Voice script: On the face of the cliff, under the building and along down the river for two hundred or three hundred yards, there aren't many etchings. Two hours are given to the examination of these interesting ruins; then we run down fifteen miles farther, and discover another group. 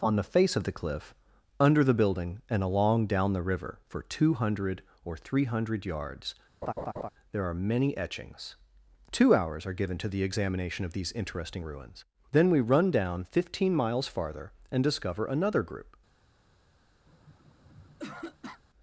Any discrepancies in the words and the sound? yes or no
yes